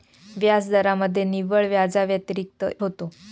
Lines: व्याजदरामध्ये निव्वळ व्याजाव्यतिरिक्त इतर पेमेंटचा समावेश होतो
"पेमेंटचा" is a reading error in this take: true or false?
true